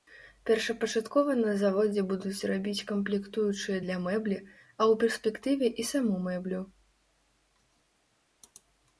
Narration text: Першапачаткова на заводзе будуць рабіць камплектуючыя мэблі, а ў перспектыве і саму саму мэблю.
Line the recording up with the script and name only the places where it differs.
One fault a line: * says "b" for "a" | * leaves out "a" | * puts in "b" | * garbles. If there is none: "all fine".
* puts in "для"
* leaves out "саму"